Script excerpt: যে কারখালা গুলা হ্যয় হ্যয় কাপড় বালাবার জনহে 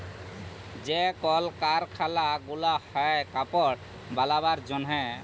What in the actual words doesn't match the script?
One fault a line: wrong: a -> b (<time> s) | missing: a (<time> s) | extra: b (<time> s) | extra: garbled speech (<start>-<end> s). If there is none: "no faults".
extra: কল (1.2 s)
missing: হ্যয় (3.2 s)